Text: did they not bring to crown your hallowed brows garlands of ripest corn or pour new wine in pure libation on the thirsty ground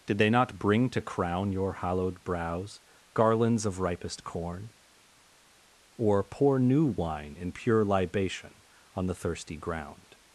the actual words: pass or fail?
pass